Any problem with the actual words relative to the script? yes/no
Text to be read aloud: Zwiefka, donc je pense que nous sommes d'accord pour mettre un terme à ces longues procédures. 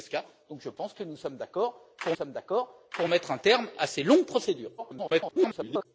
yes